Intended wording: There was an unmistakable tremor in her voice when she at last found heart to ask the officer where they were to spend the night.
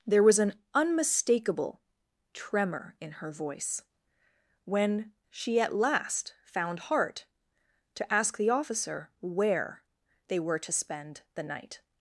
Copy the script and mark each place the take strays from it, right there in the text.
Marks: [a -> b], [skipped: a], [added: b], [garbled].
There was an unmistakable tremor in her voice when she at last found heart to ask the officer where they were to spend the night.